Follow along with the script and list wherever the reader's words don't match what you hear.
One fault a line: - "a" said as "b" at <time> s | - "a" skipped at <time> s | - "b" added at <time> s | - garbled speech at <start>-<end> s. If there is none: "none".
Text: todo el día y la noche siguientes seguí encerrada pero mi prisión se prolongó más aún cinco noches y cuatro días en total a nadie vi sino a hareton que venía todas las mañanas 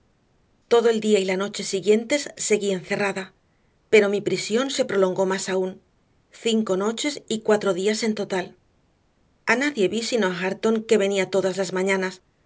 none